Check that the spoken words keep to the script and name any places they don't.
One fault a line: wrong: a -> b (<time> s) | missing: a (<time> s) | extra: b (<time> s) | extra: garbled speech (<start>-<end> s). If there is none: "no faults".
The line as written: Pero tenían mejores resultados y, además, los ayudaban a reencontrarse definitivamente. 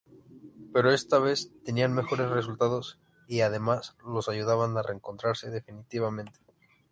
extra: esta vez (0.9 s)